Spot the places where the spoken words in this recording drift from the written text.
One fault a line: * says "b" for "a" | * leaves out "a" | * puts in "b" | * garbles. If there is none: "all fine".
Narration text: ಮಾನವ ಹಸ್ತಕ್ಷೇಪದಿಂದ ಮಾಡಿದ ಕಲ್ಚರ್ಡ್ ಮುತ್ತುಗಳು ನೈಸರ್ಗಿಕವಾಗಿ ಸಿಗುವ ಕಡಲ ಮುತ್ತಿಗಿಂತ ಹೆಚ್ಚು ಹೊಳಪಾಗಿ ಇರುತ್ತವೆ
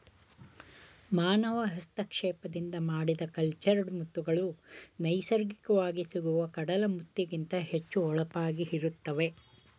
all fine